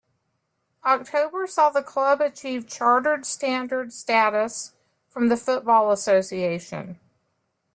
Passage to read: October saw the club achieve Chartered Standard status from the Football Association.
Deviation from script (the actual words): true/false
false